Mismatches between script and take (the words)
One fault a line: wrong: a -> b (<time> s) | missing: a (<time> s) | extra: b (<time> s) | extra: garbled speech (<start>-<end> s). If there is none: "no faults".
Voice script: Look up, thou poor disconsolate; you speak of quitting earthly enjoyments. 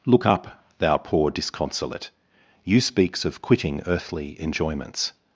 wrong: speak -> speaks (2.8 s)